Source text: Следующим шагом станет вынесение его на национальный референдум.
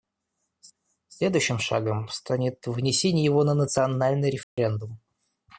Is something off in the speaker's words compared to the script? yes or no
no